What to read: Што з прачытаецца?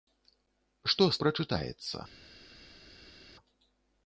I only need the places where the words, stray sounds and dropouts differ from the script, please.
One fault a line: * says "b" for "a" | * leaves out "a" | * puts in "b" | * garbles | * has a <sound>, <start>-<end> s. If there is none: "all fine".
all fine